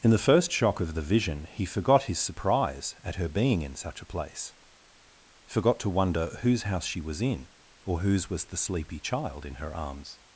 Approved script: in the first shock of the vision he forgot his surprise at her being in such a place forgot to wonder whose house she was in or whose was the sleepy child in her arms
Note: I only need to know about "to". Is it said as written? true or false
true